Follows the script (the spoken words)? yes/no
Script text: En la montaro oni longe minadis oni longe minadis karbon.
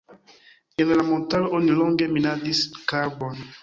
no